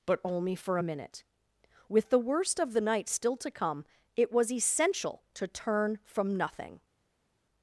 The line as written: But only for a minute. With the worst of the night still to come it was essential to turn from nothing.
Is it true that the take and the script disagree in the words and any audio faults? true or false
false